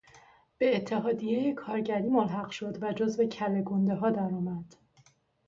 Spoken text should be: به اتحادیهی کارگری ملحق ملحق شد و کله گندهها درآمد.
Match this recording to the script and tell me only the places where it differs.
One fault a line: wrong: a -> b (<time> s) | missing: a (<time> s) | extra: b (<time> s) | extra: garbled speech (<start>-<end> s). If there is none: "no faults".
missing: ملحق (2.5 s)
extra: جزو (2.9 s)